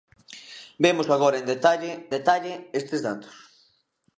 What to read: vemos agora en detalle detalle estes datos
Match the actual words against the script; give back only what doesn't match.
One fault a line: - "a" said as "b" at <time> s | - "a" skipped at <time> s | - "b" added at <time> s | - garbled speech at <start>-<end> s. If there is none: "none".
none